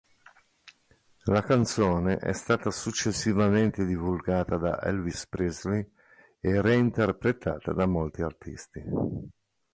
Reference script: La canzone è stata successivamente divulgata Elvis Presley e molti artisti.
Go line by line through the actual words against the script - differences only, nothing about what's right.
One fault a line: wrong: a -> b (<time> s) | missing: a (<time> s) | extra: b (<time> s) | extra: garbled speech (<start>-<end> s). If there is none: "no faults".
extra: da (4.6 s)
extra: reinterpretata da (6.6 s)